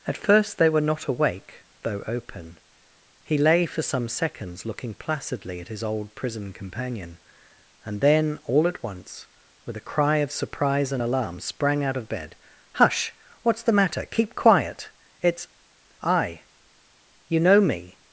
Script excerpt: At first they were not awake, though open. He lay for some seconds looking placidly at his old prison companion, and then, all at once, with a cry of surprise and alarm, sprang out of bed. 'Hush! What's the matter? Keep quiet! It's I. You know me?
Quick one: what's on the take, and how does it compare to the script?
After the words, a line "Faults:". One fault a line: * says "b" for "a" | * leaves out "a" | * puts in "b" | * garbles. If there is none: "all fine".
At first they were not awake, though open. He lay for some seconds looking placidly at his old prison companion, and then, all at once, with a cry of surprise and alarm, sprang out of bed. 'Hush! What's the matter? Keep quiet! It's I. You know me?
Faults:
all fine